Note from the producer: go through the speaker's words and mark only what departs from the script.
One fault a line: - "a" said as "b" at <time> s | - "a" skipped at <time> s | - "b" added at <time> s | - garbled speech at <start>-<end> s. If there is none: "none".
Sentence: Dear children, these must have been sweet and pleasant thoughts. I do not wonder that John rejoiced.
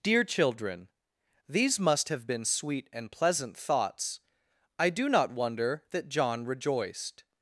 none